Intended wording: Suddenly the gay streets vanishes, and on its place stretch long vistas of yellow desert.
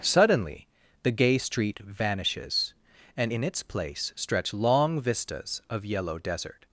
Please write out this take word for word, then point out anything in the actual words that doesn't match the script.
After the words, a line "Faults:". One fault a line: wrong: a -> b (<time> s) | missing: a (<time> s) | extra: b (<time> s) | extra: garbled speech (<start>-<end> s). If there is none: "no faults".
Suddenly the gay street vanishes, and in its place stretch long vistas of yellow desert.
Faults:
wrong: streets -> street (1.4 s)
wrong: on -> in (3.3 s)